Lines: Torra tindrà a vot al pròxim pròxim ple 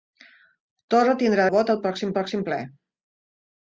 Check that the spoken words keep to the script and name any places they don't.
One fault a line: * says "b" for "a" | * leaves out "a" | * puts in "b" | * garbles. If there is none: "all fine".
all fine